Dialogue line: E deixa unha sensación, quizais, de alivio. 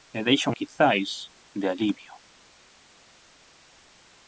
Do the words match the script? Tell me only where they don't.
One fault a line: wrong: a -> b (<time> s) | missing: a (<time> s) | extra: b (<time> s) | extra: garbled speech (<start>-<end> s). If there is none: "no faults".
missing: unha sensación (0.5 s)